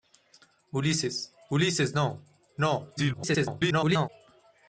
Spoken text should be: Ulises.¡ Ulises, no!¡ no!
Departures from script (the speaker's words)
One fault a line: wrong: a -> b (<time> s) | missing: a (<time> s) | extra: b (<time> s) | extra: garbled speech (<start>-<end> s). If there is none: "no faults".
extra: garbled speech (3.0-4.1 s)